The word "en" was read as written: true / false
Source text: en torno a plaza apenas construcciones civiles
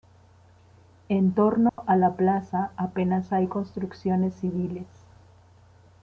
true